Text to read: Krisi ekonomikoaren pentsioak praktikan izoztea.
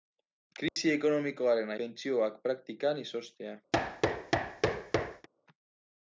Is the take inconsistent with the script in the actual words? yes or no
no